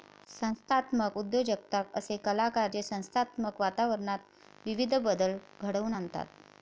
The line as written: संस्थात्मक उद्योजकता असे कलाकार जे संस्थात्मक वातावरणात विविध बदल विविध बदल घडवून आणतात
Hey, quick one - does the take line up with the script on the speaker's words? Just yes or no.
no